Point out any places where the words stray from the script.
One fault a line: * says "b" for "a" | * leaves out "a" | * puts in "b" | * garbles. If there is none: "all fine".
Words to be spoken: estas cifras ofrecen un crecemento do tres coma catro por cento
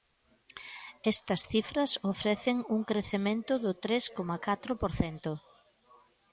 all fine